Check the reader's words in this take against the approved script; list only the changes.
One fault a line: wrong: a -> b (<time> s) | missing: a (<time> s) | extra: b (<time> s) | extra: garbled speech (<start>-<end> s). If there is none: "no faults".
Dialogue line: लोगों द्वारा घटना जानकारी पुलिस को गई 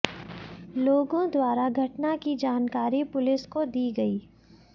extra: की (2.2 s)
extra: दी (3.7 s)